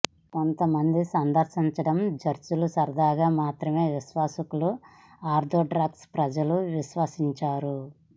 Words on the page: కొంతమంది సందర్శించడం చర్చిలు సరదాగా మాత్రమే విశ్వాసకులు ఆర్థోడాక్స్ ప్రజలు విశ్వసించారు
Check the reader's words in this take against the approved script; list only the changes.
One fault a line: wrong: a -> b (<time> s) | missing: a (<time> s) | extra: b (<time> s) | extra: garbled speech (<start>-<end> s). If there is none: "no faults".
no faults